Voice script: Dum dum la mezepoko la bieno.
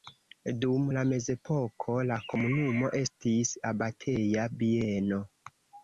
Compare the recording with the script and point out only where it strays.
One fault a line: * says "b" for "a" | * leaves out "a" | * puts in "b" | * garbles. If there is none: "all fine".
* leaves out "dum"
* puts in "komunumo estis abateja"